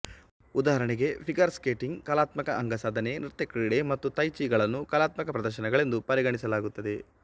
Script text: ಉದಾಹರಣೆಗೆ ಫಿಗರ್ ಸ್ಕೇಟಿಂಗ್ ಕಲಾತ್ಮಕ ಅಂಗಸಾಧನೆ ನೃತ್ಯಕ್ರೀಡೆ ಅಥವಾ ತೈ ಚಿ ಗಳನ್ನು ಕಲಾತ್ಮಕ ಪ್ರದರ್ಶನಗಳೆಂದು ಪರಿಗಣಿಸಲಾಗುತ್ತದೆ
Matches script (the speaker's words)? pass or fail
fail